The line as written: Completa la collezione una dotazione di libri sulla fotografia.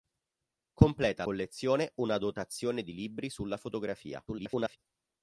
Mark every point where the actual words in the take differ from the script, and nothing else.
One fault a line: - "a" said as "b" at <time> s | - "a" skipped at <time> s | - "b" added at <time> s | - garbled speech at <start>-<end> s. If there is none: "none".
- "la" skipped at 1.2 s
- garbled speech at 4.3-4.8 s